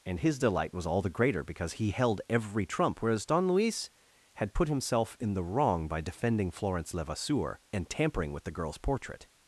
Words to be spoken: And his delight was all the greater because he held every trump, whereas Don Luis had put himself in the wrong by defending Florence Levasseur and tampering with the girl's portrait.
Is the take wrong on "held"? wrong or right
right